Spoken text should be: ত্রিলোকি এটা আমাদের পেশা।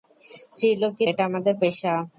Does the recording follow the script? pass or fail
pass